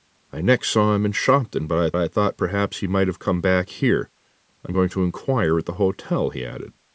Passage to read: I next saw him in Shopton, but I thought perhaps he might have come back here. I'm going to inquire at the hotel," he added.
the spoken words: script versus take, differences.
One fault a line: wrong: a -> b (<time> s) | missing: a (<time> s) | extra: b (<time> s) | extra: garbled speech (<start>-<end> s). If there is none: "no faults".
extra: I (2.0 s)